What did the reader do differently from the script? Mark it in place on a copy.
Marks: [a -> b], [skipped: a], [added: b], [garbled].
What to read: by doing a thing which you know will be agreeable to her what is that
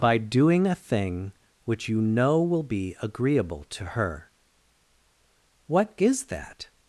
by doing a thing which you know will be agreeable to her what is that